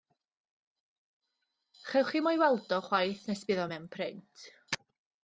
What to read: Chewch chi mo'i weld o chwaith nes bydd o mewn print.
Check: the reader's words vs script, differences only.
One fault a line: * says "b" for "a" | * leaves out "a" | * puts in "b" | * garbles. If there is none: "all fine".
all fine